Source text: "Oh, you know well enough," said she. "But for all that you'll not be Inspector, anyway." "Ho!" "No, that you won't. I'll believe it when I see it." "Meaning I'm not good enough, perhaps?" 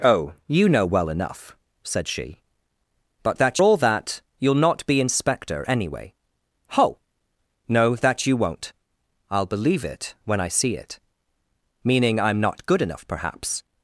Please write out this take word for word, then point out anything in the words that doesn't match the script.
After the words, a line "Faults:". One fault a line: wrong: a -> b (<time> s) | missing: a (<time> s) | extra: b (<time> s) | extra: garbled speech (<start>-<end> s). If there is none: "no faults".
"Oh, you know well enough," said she. "But that all that you'll not be Inspector, anyway." "Ho!" "No, that you won't. I'll believe it when I see it." "Meaning I'm not good enough, perhaps?"
Faults:
wrong: for -> that (3.3 s)